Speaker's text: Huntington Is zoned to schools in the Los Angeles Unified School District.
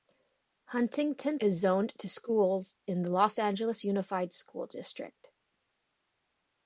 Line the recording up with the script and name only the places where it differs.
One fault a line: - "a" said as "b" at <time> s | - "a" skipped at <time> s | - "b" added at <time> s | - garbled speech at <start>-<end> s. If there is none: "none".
none